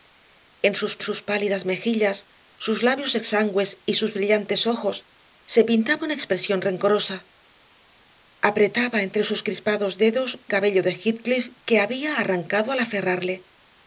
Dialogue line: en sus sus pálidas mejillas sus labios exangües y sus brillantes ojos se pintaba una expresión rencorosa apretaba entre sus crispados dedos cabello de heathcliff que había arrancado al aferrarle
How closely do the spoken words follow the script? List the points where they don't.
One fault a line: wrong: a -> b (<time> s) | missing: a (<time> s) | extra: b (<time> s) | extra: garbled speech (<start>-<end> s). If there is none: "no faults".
no faults